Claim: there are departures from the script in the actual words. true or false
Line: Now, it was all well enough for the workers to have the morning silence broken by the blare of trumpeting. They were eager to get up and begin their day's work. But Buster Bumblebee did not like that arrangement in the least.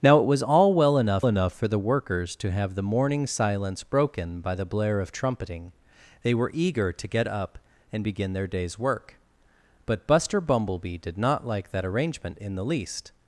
true